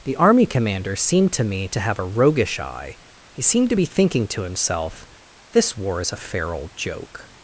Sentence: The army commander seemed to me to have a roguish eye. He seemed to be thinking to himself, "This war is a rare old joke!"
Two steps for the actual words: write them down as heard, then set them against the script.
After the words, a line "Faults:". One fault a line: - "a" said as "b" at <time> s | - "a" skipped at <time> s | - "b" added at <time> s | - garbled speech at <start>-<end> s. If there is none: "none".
The army commander seemed to me to have a roguish eye. He seemed to be thinking to himself, "This war is a fair old joke!"
Faults:
- "rare" said as "fair" at 6.2 s